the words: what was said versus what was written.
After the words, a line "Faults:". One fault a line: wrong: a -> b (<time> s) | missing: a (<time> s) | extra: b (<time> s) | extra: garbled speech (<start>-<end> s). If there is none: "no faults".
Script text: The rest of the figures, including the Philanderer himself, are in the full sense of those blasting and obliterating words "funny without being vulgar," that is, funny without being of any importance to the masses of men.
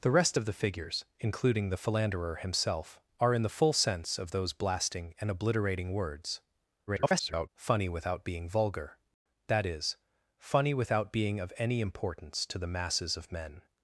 The rest of the figures, including the Philanderer himself, are in the full sense of those blasting and obliterating words [garbled] "funny without being vulgar," that is, funny without being of any importance to the masses of men.
Faults:
extra: garbled speech (6.9-7.5 s)